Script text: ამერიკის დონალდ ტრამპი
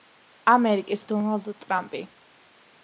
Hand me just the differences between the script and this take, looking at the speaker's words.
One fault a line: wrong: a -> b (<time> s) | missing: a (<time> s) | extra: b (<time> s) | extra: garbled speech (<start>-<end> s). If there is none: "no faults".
no faults